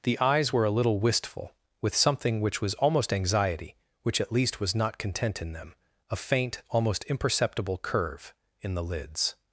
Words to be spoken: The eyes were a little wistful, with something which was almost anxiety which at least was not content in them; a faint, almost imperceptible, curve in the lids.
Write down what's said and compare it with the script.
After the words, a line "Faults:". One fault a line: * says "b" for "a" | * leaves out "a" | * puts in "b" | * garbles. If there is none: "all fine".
The eyes were a little wistful, with something which was almost anxiety which at least was not content in them; a faint, almost imperceptible, curve in the lids.
Faults:
all fine